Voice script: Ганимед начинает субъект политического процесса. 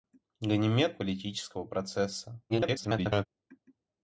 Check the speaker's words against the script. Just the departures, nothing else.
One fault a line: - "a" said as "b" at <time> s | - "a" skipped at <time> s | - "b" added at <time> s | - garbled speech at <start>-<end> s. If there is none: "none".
- "начинает субъект" skipped at 1.0 s
- garbled speech at 2.5-3.3 s